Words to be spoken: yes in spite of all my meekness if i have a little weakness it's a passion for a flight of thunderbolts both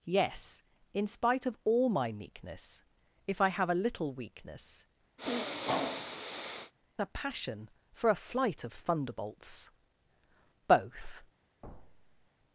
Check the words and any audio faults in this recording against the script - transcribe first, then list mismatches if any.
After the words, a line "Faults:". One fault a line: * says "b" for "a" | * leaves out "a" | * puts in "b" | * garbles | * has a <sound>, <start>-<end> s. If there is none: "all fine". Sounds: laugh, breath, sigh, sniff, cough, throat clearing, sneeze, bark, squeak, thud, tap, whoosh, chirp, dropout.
yes in spite of all my meekness if i have a little weakness a passion for a flight of thunderbolts both
Faults:
* leaves out "it's"
* has a sniff, 5.2-6.7 s
* has a thud, 11.6-12.3 s